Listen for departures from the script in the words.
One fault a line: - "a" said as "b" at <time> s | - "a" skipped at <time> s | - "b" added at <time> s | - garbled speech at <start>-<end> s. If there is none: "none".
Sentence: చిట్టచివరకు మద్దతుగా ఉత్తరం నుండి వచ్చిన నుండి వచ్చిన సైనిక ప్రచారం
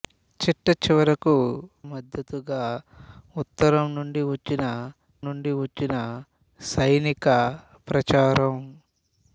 none